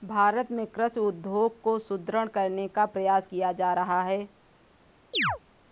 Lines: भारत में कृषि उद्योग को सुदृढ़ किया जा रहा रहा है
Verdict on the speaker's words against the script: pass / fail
fail